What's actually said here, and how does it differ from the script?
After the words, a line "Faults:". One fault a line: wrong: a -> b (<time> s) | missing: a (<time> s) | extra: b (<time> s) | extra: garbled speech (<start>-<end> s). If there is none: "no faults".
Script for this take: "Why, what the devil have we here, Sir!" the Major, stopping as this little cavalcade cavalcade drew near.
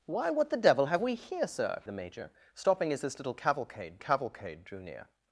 "Why, what the devil have we here, Sir!" the Major, stopping as this little cavalcade cavalcade drew near.
Faults:
no faults